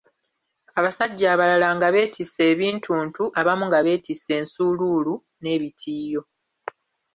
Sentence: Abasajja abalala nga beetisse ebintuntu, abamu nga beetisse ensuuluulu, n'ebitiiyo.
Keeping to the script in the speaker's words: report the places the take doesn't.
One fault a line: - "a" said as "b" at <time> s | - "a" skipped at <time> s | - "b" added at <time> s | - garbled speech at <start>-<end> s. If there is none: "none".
none